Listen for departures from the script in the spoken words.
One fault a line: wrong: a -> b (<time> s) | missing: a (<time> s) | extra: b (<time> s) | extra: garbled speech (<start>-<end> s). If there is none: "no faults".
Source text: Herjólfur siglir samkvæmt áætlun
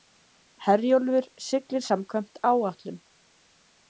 no faults